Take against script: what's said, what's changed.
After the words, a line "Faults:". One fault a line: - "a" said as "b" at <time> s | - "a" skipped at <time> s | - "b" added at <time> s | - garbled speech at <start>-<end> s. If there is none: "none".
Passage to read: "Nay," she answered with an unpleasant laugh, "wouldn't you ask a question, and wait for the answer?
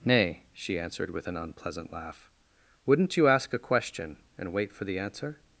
"Nay," she answered with an unpleasant laugh, "wouldn't you ask a question, and wait for the answer?
Faults:
none